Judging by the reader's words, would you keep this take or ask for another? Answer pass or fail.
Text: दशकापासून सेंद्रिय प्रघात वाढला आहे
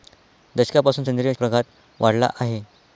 pass